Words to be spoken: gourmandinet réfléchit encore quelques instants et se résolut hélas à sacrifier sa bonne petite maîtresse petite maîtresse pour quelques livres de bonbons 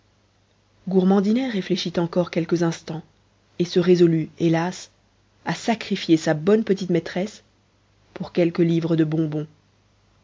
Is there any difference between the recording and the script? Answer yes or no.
yes